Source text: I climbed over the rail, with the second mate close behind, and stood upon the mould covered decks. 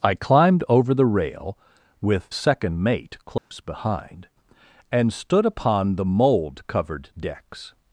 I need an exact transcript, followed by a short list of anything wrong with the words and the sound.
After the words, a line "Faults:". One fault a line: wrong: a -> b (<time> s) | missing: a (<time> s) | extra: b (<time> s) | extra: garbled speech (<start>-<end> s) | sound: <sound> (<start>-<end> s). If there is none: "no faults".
I climbed over the rail, with second mate close behind, and stood upon the mould covered decks.
Faults:
missing: the (2.3 s)
sound: dropout (3.4-3.5 s)